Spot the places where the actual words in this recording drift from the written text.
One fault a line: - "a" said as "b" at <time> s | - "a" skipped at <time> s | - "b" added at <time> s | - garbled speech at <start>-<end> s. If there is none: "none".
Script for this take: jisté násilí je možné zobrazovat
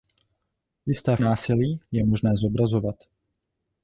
none